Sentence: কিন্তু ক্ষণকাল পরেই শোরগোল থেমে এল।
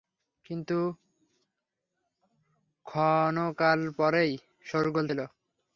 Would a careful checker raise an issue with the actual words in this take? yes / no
yes